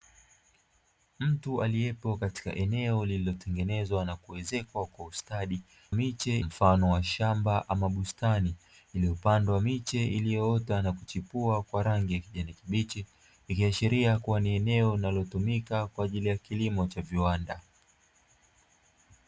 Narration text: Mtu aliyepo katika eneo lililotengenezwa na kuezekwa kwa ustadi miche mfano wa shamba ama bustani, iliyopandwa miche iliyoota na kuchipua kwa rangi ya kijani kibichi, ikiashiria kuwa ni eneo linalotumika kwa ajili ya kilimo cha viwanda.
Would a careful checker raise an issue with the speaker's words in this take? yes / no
no